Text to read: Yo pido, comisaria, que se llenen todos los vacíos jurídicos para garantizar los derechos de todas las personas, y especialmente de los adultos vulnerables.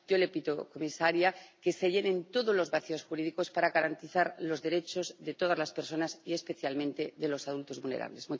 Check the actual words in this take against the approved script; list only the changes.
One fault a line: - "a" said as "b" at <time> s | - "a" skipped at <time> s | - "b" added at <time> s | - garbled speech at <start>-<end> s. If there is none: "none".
- "le" added at 0.2 s